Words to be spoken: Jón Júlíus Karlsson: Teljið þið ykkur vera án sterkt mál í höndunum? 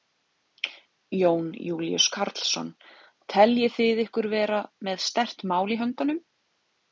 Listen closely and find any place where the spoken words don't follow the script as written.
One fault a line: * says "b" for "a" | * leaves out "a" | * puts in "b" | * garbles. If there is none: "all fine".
* says "með" for "án"